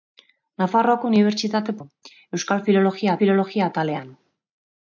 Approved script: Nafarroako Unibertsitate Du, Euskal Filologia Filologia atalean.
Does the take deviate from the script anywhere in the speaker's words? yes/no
no